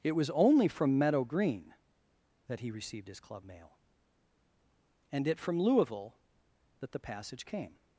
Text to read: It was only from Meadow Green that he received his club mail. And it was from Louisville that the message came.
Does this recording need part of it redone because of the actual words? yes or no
yes